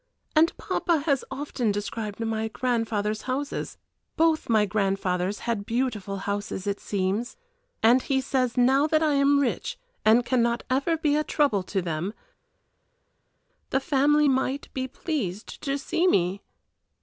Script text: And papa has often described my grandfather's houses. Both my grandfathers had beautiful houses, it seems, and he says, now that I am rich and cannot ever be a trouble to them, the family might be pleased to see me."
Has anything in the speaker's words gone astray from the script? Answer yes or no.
no